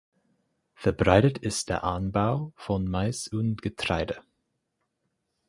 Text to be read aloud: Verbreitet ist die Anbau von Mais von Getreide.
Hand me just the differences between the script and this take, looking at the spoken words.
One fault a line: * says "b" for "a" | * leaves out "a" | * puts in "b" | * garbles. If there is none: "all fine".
* says "der" for "die"
* says "und" for "von"